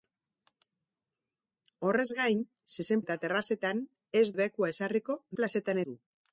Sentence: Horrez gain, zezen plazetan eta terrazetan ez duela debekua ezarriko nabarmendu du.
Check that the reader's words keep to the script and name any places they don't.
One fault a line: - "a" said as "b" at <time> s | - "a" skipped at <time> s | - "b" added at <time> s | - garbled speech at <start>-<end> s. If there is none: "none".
- "plazetan" skipped at 3.0 s
- "duela" skipped at 4.3 s
- "nabarmendu" said as "plazetan" at 5.4 s